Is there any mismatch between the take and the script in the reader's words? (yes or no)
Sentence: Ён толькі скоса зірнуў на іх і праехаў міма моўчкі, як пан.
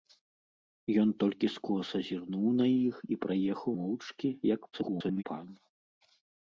yes